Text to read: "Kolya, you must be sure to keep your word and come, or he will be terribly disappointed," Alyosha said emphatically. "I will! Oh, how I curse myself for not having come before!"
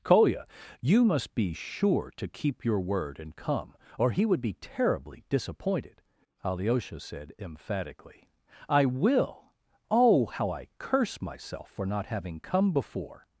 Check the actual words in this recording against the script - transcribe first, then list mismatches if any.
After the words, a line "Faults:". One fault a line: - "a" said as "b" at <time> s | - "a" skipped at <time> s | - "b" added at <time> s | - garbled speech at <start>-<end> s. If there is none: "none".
"Kolya, you must be sure to keep your word and come, or he would be terribly disappointed," Alyosha said emphatically. "I will! Oh, how I curse myself for not having come before!"
Faults:
- "will" said as "would" at 4.2 s